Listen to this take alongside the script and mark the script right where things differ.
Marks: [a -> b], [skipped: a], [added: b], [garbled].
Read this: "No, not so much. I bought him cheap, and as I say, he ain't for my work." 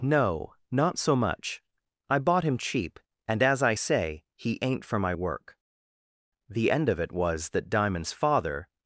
"No, not so much. I bought him cheap, and as I say, he ain't for my work." [added: The end of it was that Diamond's father]